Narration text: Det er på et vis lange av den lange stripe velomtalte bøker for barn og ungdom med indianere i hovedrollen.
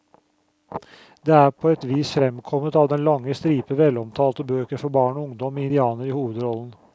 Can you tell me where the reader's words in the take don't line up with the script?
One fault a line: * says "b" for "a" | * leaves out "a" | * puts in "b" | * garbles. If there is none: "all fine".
* says "fremkommet" for "lange"